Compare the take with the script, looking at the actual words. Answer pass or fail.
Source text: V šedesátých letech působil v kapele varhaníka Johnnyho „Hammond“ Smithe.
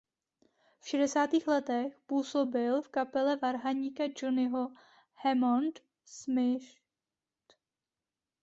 pass